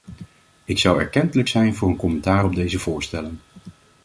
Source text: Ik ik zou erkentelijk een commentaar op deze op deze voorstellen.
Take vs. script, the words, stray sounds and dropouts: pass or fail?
fail